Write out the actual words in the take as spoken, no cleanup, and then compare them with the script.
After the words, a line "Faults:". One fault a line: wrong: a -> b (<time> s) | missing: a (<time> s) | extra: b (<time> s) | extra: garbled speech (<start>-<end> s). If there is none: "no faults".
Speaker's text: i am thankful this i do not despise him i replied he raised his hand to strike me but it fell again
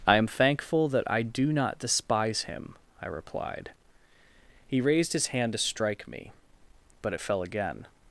i am thankful that i do not despise him i replied he raised his hand to strike me but it fell again
Faults:
wrong: this -> that (0.9 s)